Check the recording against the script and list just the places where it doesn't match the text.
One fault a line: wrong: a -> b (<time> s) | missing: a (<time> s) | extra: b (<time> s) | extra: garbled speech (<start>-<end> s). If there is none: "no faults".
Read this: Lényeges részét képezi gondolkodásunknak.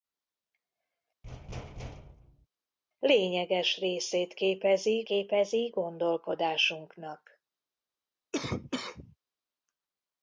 extra: képezi (5.0 s)